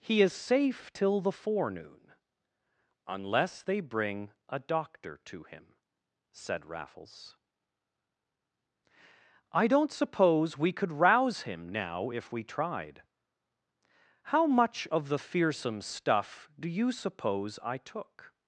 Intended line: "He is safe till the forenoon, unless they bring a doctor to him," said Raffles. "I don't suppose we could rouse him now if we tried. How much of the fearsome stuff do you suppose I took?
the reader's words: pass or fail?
pass